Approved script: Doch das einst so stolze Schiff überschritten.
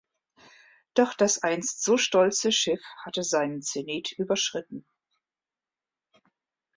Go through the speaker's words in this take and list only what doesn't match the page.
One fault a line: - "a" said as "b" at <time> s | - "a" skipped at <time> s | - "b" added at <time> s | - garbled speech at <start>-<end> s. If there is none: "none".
- "hatte seinen Zenit" added at 3.0 s